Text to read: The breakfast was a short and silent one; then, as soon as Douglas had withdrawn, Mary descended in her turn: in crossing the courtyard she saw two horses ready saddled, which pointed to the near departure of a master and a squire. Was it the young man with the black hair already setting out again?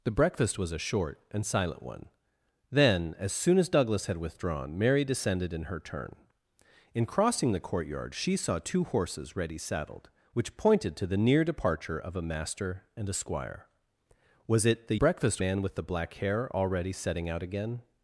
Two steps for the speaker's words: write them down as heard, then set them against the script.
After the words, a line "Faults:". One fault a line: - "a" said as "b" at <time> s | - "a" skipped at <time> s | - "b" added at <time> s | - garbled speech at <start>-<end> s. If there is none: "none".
The breakfast was a short and silent one; then, as soon as Douglas had withdrawn, Mary descended in her turn: in crossing the courtyard she saw two horses ready saddled, which pointed to the near departure of a master and a squire. Was it the breakfast man with the black hair already setting out again?
Faults:
- "young" said as "breakfast" at 14.9 s